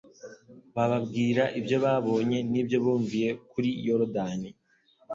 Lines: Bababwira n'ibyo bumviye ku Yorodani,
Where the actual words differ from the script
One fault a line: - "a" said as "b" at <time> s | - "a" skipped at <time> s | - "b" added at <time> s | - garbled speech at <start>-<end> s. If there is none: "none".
- "ibyo babonye" added at 1.6 s
- "ku" said as "kuri" at 3.5 s